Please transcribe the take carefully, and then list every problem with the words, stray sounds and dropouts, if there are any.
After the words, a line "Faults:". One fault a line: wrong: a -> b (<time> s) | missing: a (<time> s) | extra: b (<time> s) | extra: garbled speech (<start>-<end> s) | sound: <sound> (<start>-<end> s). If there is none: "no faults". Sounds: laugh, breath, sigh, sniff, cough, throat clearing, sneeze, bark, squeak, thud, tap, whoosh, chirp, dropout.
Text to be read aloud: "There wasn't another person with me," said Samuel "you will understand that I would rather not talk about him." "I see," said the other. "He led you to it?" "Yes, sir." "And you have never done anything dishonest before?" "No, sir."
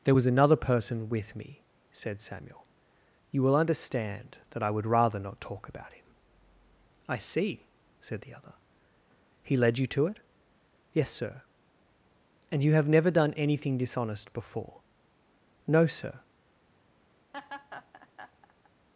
"There was another person with me," said Samuel "you will understand that I would rather not talk about him." "I see," said the other. "He led you to it?" "Yes, sir." "And you have never done anything dishonest before?" "No, sir."
Faults:
wrong: wasn't -> was (0.1 s)
sound: laugh (17.3-18.7 s)